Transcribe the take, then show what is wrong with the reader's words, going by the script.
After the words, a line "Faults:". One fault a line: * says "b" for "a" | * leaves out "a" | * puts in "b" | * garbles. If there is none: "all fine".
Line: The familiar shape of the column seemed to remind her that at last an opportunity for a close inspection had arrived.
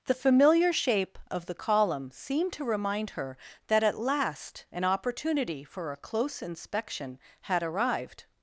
The familiar shape of the column seemed to remind her that at last an opportunity for a close inspection had arrived.
Faults:
all fine